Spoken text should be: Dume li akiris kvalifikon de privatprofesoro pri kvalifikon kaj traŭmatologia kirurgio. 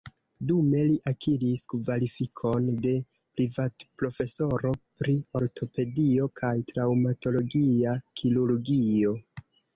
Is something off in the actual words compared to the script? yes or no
yes